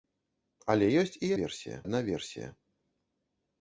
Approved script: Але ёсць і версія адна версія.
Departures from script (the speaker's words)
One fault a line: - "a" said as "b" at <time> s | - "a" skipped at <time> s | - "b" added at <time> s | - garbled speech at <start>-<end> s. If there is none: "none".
none